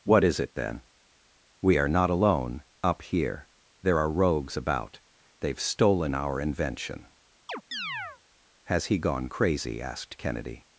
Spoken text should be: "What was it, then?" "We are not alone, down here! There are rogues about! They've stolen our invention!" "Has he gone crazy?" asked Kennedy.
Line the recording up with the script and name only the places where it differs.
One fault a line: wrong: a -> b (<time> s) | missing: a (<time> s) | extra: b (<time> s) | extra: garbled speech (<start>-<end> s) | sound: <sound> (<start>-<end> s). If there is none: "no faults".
wrong: was -> is (0.2 s)
wrong: down -> up (2.8 s)
sound: chirp (7.5-8.2 s)